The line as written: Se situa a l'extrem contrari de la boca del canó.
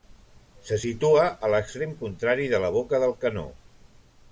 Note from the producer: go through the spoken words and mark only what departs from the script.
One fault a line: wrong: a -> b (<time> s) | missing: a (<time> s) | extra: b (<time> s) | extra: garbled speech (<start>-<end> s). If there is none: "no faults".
no faults